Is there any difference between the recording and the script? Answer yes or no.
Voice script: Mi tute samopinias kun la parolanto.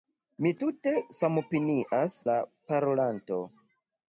yes